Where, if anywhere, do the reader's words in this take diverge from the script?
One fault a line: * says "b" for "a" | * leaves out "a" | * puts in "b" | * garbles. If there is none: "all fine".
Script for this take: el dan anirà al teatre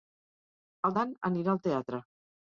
all fine